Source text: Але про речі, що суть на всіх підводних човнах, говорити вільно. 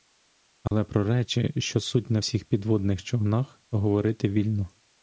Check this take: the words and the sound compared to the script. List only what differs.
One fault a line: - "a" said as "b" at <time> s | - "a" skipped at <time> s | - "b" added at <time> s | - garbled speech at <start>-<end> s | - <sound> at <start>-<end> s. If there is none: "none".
- dropout at 0.7-0.7 s